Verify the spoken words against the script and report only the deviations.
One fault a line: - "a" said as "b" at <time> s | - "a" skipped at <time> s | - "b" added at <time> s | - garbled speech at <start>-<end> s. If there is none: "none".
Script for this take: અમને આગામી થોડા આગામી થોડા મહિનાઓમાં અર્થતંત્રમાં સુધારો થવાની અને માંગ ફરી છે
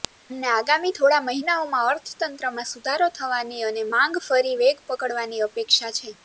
- "આગામી થોડા" skipped at 1.3 s
- "વેગ પકડવાની અપેક્ષા" added at 4.6 s